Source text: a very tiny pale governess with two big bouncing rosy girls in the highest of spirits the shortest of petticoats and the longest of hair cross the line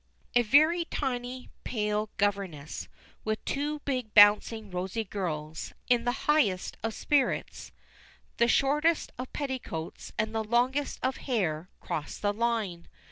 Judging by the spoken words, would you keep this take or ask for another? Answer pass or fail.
pass